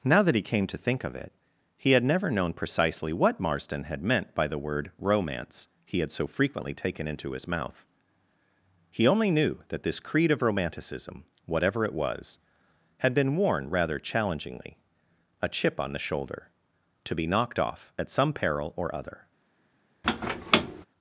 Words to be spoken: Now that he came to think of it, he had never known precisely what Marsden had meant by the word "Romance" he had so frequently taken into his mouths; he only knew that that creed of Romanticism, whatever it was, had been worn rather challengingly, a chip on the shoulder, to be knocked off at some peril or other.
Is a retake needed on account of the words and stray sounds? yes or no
yes